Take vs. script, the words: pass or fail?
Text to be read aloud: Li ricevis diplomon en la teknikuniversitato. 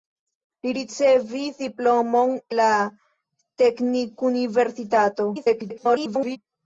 fail